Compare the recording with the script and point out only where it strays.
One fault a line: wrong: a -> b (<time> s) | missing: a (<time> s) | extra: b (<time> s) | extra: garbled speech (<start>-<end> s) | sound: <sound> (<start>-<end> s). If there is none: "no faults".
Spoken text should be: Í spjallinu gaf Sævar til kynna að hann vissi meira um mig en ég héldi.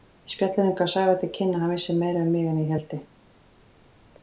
no faults